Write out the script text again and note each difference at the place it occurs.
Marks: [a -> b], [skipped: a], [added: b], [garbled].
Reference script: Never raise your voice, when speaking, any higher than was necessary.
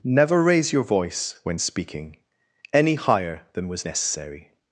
Never raise your voice, when speaking, any higher than was necessary.